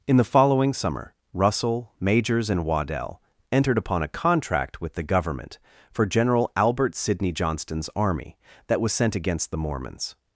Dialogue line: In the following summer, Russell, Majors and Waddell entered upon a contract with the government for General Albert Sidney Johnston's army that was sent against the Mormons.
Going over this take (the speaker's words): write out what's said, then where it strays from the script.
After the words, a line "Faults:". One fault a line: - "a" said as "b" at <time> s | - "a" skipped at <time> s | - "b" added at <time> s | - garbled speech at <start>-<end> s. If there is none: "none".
In the following summer, Russell, Majors and Waddell entered upon a contract with the government for General Albert Sidney Johnston's army that was sent against the Mormons.
Faults:
none